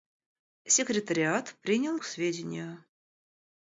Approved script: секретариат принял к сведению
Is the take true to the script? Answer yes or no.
yes